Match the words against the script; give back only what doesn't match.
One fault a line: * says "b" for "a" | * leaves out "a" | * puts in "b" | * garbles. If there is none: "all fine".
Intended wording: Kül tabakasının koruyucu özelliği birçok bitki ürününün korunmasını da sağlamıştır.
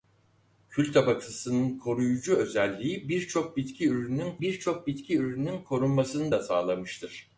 * puts in "birçok bitki ürününün"